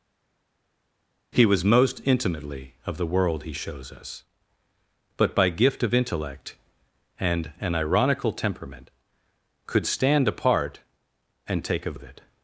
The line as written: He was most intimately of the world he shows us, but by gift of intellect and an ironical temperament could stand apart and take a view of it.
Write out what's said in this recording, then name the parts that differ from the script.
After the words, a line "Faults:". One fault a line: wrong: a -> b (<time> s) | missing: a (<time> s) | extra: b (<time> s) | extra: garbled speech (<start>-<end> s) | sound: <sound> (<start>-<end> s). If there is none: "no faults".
He was most intimately of the world he shows us, but by gift of intellect and an ironical temperament could stand apart and take a of it.
Faults:
missing: view (12.0 s)